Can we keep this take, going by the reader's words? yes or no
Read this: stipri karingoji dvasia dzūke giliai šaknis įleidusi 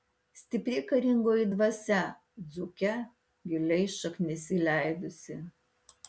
yes